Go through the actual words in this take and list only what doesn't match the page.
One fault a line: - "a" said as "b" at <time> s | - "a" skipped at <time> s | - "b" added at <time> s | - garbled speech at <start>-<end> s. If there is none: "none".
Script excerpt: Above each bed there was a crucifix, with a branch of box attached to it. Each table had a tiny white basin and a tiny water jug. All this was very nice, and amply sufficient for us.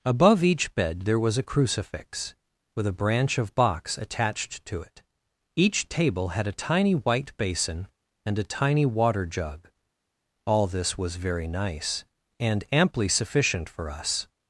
none